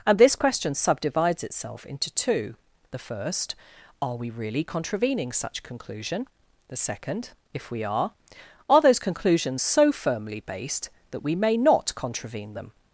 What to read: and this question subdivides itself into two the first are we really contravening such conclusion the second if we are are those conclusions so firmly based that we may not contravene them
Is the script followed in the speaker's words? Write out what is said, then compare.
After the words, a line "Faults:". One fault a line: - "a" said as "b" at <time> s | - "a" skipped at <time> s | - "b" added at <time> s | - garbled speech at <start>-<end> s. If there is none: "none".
and this question subdivides itself into two the first are we really contravening such conclusion the second if we are are those conclusions so firmly based that we may not contravene them
Faults:
none